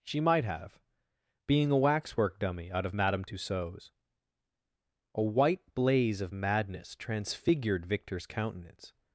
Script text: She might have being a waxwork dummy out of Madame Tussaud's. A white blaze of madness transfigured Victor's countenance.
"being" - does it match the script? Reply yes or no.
yes